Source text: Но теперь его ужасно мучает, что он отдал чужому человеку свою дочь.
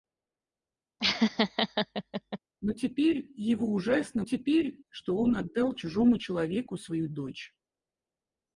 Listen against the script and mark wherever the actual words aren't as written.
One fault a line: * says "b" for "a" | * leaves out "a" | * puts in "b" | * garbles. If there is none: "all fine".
* says "теперь" for "мучает"